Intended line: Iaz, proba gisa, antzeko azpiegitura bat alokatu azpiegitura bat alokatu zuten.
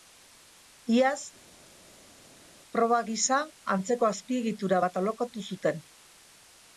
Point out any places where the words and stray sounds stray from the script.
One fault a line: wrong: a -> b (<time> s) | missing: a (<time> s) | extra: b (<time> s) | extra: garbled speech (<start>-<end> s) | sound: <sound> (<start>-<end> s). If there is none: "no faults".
missing: azpiegitura bat alokatu (5.5 s)